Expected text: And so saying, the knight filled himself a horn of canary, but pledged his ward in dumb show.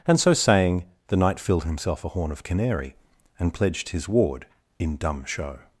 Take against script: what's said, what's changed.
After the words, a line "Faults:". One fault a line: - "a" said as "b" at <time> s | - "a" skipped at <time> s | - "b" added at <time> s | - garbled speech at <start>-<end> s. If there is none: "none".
And so saying, the knight filled himself a horn of canary, and pledged his ward in dumb show.
Faults:
- "but" said as "and" at 3.4 s